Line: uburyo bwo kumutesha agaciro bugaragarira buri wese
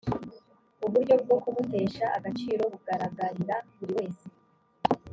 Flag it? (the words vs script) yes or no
no